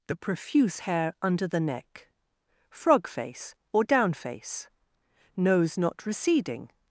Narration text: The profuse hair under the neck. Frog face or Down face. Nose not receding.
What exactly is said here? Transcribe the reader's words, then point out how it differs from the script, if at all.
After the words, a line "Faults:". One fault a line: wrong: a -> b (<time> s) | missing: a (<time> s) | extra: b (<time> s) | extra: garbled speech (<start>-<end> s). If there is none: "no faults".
The profuse hair under the neck. Frog face or Down face. Nose not receding.
Faults:
no faults